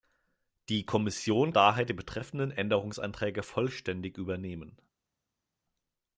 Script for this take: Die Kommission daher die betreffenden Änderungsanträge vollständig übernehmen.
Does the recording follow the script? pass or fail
pass